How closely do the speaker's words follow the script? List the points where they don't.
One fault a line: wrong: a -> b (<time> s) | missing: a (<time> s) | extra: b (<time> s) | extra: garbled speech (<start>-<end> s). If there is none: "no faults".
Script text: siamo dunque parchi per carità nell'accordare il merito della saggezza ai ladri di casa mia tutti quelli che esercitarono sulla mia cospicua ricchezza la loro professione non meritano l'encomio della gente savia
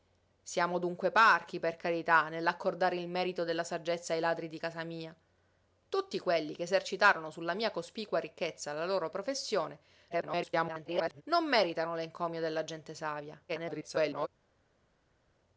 extra: garbled speech (10.1-11.2 s)
extra: garbled speech (13.5-14.3 s)